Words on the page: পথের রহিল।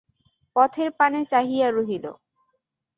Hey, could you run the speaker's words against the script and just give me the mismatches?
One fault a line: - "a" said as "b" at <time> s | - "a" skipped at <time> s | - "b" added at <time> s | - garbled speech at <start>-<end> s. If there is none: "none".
- "পানে চাহিয়া" added at 1.0 s